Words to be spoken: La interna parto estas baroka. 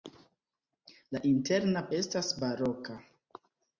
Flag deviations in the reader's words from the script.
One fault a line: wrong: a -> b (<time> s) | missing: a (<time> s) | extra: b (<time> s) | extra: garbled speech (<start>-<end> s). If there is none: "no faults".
missing: parto (1.9 s)